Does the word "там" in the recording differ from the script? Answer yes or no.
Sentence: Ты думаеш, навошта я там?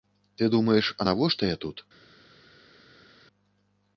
yes